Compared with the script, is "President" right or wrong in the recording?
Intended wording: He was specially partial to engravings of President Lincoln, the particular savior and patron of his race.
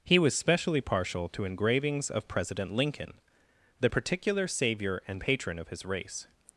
right